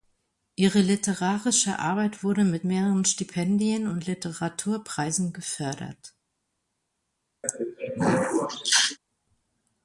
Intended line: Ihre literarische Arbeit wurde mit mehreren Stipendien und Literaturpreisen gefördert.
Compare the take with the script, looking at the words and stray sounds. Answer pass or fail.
fail